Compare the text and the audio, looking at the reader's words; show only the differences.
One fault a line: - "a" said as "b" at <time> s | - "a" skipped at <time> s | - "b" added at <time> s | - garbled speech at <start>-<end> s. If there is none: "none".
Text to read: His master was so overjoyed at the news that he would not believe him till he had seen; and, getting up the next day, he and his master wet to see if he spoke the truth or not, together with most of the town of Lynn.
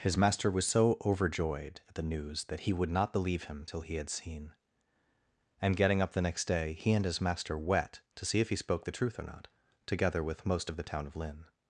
none